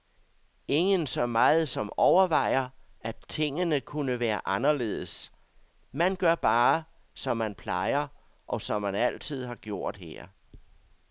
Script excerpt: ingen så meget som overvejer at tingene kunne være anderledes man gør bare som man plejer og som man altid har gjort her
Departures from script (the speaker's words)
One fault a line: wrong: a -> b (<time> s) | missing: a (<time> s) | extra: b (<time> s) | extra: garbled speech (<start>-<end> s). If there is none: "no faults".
no faults